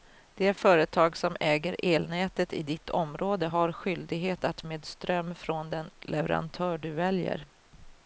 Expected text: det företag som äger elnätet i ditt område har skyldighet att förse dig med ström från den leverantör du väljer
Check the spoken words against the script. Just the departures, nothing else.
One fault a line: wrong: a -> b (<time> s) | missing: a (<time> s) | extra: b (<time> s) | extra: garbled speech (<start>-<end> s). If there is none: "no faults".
missing: förse dig (4.6 s)